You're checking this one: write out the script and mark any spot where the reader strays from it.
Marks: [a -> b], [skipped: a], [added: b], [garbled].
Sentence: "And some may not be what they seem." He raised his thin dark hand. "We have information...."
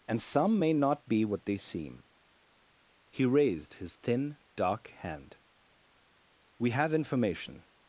"And some may not be what they seem." He raised his thin dark hand. "We have information...."